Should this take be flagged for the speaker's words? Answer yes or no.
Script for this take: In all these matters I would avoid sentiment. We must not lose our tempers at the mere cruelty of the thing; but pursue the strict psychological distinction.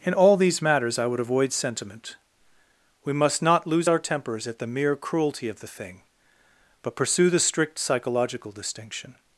no